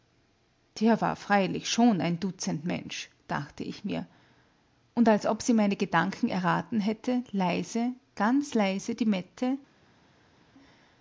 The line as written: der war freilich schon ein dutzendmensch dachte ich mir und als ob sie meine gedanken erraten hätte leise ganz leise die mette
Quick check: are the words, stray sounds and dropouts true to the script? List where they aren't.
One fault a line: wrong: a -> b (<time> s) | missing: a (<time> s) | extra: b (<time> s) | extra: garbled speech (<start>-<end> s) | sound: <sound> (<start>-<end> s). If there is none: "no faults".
no faults